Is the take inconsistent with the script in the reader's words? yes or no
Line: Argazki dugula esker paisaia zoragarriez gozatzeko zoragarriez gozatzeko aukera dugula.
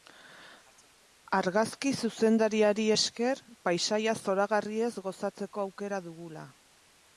yes